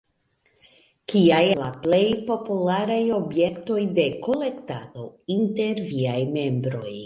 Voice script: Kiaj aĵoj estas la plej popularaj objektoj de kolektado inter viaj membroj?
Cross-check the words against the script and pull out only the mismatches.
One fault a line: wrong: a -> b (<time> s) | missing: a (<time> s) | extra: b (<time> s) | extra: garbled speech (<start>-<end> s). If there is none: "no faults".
missing: aĵoj estas (1.4 s)